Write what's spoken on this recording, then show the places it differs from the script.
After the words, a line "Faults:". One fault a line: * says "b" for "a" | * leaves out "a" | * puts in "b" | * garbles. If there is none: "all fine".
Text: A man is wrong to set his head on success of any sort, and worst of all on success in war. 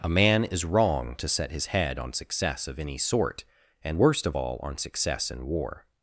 A man is wrong to set his head on success of any sort, and worst of all on success in war.
Faults:
all fine